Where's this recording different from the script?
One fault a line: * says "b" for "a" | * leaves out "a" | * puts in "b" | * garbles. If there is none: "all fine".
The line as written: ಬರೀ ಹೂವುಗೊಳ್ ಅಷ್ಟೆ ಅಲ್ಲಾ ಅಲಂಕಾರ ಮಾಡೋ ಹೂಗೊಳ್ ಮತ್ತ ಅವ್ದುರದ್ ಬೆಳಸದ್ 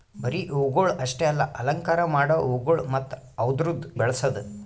all fine